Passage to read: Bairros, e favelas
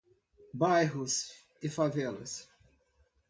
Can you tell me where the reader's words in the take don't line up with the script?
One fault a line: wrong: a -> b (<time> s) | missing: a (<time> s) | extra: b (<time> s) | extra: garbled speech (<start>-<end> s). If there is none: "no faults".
no faults